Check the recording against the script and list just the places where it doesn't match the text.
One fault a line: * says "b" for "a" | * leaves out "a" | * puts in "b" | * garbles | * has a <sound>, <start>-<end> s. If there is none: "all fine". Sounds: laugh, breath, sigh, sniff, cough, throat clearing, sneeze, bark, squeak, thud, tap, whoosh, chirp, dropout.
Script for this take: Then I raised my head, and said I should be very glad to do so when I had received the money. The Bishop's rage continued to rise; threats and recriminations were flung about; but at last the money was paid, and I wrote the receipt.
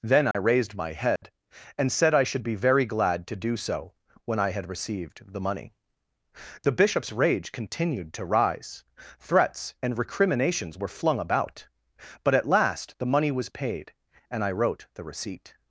* has a dropout, 0.3-0.3 s
* has a dropout, 1.2-1.2 s